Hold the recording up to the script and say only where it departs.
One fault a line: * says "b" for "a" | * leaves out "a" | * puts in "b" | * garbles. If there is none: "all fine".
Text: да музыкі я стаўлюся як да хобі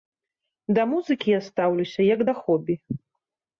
all fine